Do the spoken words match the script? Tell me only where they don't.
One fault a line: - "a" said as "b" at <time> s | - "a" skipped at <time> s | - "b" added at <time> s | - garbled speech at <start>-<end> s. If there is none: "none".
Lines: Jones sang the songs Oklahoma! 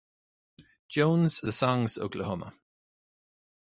- "sang" skipped at 1.5 s